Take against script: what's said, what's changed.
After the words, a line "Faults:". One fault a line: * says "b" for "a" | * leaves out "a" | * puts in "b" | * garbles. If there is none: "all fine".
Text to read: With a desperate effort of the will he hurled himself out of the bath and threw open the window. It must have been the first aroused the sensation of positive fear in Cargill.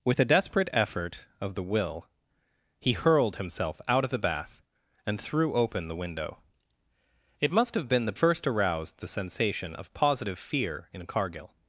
With a desperate effort of the will he hurled himself out of the bath and threw open the window. It must have been the first aroused the sensation of positive fear in Cargill.
Faults:
all fine